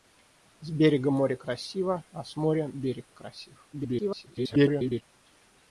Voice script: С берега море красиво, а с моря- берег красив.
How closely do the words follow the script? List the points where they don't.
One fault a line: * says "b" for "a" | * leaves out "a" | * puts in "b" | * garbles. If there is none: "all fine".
* garbles